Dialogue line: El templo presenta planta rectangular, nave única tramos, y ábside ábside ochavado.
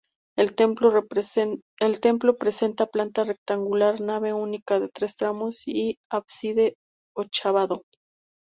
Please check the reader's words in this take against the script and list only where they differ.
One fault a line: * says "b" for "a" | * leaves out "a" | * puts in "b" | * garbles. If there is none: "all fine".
* puts in "de tres"
* leaves out "ábside"